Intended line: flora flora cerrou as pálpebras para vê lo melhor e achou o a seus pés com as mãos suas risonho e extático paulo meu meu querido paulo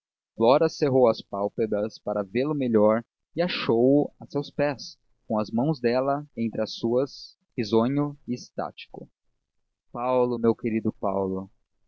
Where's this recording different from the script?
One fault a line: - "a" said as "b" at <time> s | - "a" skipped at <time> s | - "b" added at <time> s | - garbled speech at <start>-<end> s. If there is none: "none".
- "flora" skipped at 0.7 s
- "dela entre as" added at 5.8 s
- "meu" skipped at 10.6 s